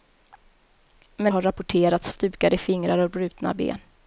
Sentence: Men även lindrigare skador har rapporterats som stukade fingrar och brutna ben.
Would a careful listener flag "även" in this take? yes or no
yes